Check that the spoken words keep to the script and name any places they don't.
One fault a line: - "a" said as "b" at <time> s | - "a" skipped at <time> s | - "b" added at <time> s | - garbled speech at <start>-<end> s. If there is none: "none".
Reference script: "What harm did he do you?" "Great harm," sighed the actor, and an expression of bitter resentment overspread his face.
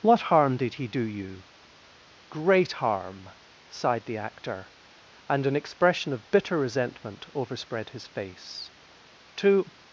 - "To" added at 9.3 s